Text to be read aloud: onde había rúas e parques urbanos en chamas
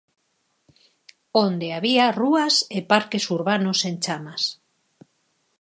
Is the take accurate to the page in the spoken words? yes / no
yes